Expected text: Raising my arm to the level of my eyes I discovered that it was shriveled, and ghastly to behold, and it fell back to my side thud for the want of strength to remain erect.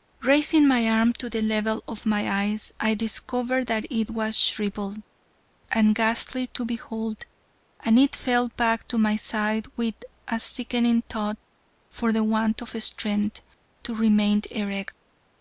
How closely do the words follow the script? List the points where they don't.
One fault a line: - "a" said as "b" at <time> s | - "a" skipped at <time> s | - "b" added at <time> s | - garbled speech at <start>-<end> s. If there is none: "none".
- "with a sickening" added at 9.8 s